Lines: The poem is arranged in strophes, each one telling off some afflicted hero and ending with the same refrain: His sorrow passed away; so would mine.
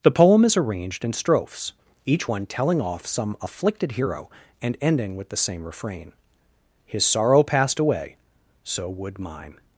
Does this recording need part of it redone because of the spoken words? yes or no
no